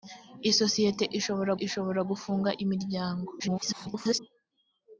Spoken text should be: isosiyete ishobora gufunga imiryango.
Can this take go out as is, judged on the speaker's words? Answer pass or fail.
fail